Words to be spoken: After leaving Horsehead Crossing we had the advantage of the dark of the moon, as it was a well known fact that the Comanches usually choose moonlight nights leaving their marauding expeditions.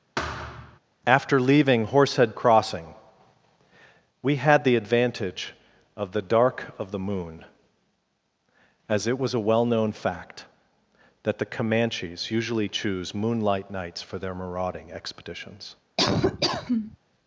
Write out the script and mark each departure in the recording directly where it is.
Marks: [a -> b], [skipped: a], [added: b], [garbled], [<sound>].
[thud] After leaving Horsehead Crossing we had the advantage of the dark of the moon, as it was a well known fact that the Comanches usually choose moonlight nights [leaving -> for] their marauding expeditions. [laugh]